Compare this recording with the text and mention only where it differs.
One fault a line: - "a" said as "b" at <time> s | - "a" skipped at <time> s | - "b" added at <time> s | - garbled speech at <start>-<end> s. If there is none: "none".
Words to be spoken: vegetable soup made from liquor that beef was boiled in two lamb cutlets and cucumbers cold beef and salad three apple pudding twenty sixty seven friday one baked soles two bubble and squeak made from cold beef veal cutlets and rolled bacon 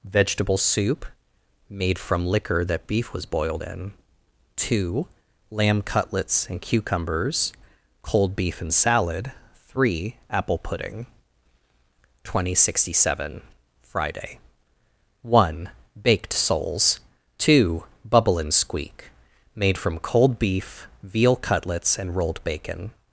none